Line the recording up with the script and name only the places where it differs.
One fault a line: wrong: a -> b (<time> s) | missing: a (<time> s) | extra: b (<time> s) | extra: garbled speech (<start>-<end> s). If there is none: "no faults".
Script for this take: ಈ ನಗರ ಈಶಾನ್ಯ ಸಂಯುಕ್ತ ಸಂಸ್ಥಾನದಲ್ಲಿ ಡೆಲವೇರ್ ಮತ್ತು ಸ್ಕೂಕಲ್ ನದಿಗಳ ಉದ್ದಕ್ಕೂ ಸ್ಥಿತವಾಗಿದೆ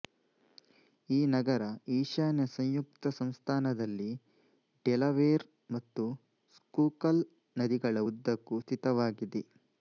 no faults